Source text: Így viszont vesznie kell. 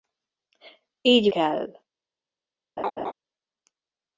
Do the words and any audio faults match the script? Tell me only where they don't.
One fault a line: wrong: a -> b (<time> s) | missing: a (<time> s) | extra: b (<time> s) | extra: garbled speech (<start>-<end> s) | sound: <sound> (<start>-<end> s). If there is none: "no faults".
missing: viszont vesznie (1.3 s)
sound: laugh (2.8-3.1 s)